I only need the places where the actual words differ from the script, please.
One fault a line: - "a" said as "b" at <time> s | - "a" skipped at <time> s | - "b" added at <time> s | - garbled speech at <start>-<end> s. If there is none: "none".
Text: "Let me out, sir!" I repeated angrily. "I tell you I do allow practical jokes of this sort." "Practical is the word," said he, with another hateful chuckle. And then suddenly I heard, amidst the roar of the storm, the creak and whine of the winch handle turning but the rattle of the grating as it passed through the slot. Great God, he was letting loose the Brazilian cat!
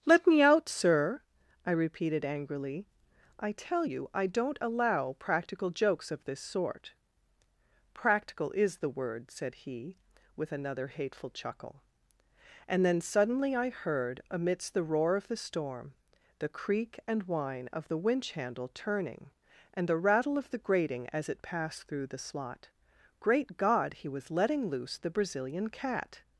- "do" said as "don't" at 4.3 s
- "but" said as "and" at 19.7 s